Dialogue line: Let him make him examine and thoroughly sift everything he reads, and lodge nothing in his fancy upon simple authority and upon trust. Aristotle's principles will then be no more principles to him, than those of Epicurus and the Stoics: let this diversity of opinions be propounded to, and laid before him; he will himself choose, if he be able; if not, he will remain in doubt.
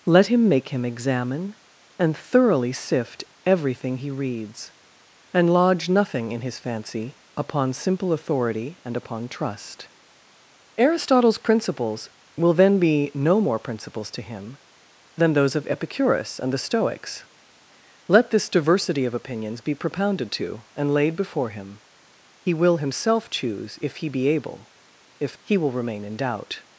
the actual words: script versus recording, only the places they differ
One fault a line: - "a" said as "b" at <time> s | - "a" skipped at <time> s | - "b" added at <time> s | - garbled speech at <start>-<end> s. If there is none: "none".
- "not" skipped at 25.4 s